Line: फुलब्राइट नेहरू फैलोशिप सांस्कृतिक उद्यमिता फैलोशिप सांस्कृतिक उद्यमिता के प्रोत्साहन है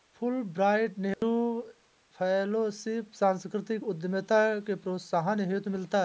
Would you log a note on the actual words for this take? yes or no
yes